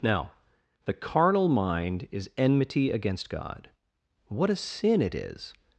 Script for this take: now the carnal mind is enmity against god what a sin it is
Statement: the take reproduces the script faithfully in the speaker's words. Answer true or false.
true